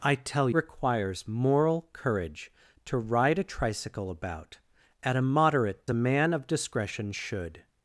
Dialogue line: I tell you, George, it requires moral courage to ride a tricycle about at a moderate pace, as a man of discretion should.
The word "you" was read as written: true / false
false